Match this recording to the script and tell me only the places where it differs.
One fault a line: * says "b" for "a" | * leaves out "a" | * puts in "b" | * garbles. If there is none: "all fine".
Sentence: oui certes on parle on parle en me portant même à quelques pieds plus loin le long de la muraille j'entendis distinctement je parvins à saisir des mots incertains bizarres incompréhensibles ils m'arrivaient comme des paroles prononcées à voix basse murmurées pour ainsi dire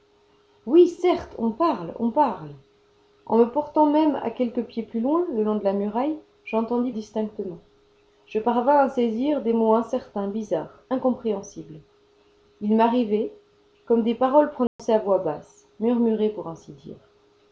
all fine